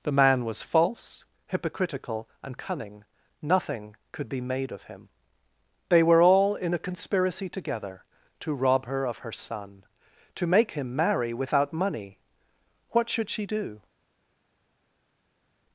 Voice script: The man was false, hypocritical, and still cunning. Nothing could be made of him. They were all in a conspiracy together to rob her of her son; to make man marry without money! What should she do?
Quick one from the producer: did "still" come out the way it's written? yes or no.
no